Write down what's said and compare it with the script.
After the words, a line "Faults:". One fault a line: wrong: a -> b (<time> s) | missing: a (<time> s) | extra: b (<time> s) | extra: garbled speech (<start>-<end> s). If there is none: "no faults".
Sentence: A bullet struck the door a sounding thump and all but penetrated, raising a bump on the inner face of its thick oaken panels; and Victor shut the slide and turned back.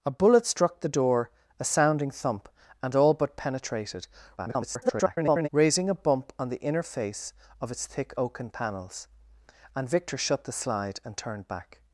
A bullet struck the door a sounding thump and all but penetrated, [garbled] raising a bump on the inner face of its thick oaken panels; and Victor shut the slide and turned back.
Faults:
extra: garbled speech (4.4-5.5 s)